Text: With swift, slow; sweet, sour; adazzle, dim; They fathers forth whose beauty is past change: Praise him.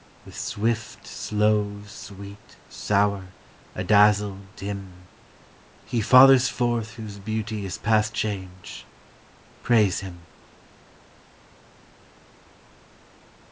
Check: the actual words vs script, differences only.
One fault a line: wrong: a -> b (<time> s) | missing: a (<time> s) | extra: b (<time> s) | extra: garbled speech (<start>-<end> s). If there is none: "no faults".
wrong: They -> He (5.8 s)